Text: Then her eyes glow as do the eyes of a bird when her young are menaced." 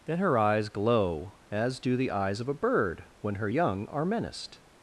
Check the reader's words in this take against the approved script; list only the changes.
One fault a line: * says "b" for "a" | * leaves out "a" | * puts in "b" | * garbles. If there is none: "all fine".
all fine